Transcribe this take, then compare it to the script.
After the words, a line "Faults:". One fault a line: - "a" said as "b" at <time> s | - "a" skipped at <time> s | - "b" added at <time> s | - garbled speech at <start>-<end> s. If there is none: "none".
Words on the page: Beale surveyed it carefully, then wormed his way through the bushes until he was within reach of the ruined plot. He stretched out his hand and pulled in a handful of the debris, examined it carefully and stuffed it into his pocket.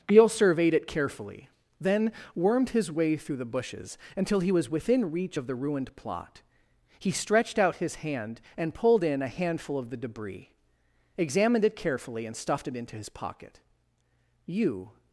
Beale surveyed it carefully, then wormed his way through the bushes until he was within reach of the ruined plot. He stretched out his hand and pulled in a handful of the debris, examined it carefully and stuffed it into his pocket. "You
Faults:
- "You" added at 14.4 s